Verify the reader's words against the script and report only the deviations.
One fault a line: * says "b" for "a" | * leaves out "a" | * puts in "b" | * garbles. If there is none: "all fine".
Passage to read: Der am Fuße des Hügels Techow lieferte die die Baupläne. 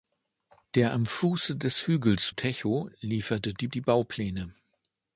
all fine